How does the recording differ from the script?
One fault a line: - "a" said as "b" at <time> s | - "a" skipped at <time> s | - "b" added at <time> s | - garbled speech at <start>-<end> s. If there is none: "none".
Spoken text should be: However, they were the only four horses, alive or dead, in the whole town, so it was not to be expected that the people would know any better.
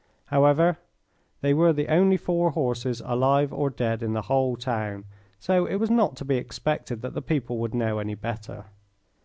none